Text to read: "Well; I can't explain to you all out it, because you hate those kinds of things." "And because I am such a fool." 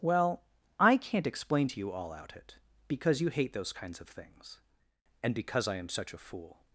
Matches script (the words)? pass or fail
pass